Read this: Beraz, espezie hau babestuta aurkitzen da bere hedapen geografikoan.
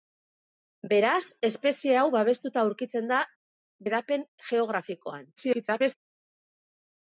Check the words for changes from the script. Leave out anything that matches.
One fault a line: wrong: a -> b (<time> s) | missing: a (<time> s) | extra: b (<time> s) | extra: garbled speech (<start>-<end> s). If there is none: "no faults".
missing: bere (3.2 s)
extra: garbled speech (5.4-6.0 s)